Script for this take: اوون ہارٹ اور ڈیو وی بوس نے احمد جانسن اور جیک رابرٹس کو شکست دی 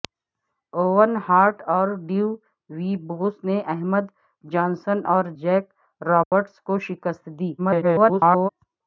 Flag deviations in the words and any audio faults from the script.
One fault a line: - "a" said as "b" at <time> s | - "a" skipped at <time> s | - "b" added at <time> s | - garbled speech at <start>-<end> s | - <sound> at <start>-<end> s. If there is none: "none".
- dropout at 6.2-6.3 s
- garbled speech at 7.6-8.5 s